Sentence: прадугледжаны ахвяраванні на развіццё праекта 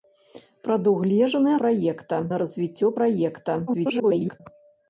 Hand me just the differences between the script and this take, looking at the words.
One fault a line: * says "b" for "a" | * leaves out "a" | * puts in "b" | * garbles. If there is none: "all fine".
* says "праекта" for "ахвяраванні"
* garbles